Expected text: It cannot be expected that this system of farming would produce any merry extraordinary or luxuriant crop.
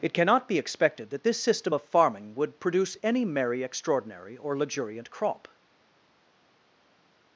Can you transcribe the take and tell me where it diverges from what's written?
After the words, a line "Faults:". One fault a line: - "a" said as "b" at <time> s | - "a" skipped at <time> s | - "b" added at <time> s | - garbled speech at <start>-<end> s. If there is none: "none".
It cannot be expected that this system of farming would produce any merry extraordinary or luxuriant crop.
Faults:
none